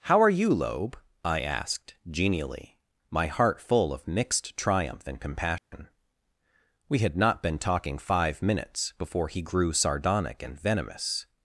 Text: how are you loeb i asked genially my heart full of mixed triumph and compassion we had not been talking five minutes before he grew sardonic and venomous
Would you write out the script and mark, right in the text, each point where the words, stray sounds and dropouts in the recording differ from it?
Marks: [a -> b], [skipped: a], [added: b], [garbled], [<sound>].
how are you loeb i asked genially my heart full of mixed triumph and compassion [dropout] we had not been talking five minutes before he grew sardonic and venomous